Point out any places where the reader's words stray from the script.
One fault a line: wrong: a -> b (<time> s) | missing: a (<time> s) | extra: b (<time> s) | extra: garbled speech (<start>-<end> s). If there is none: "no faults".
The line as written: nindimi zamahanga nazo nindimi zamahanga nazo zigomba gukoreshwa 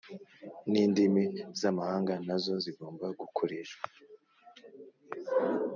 missing: nindimi zamahanga nazo (2.5 s)